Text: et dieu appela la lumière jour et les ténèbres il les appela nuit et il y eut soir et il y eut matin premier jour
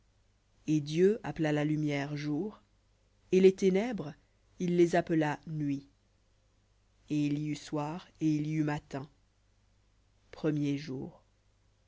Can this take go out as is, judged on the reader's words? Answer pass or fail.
pass